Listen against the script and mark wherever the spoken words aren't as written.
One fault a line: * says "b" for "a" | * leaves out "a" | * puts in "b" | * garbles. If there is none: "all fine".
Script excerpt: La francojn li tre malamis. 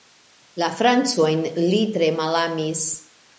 all fine